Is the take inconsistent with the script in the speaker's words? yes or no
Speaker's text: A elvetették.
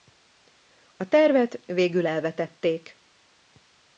yes